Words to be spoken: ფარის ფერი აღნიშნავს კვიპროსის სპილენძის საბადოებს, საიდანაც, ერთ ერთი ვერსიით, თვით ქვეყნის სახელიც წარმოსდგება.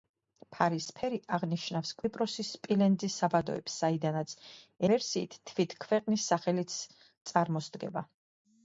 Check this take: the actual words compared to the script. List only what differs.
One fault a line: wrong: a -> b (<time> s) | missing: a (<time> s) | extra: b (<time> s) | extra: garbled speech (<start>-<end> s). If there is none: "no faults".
missing: ერთ ერთი (4.3 s)